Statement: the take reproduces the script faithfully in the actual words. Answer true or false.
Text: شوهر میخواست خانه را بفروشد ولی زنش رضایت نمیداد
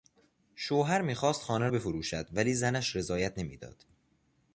false